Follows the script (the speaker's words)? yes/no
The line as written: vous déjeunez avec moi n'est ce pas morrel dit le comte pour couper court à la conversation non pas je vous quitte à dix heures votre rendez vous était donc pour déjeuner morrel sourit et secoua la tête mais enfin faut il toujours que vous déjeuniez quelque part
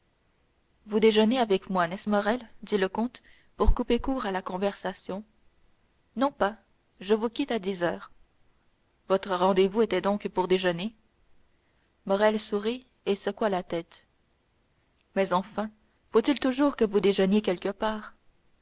no